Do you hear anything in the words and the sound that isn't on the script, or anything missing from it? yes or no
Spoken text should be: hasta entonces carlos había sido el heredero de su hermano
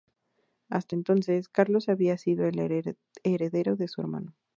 no